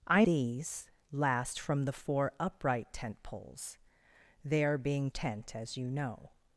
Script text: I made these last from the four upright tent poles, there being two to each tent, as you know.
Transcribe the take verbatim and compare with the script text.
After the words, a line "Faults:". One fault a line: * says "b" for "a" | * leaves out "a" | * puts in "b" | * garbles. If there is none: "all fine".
I these last from the four upright tent poles, there being tent, as you know.
Faults:
* leaves out "made"
* leaves out "two to each"